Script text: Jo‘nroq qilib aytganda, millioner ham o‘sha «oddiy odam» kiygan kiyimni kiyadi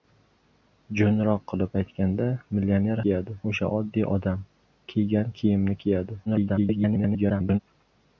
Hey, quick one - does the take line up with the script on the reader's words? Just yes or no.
no